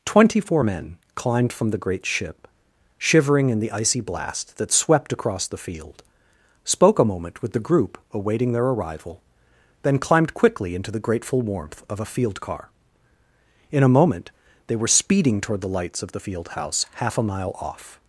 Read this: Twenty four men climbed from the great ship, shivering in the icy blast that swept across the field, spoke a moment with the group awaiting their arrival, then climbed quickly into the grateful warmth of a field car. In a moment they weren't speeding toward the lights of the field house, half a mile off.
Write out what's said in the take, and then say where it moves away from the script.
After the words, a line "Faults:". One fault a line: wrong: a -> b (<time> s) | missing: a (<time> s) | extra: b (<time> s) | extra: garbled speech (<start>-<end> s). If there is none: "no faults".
Twenty four men climbed from the great ship, shivering in the icy blast that swept across the field, spoke a moment with the group awaiting their arrival, then climbed quickly into the grateful warmth of a field car. In a moment they were speeding toward the lights of the field house, half a mile off.
Faults:
wrong: weren't -> were (14.8 s)